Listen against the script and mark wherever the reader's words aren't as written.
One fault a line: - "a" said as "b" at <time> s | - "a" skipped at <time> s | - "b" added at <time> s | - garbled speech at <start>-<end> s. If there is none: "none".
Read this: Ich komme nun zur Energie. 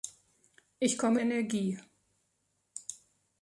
- "nun zur" skipped at 1.2 s